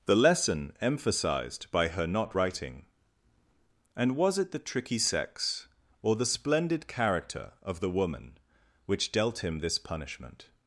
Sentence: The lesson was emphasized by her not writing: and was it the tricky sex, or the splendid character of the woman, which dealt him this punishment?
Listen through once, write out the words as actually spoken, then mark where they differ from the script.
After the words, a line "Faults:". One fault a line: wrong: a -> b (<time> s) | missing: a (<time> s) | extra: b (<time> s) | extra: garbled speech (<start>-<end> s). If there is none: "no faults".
The lesson emphasized by her not writing: and was it the tricky sex, or the splendid character of the woman, which dealt him this punishment?
Faults:
missing: was (0.7 s)